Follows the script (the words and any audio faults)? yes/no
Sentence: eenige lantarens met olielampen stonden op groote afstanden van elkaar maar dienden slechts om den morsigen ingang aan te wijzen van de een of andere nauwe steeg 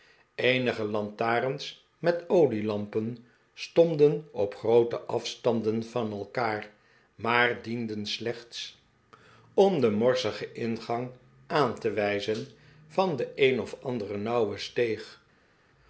yes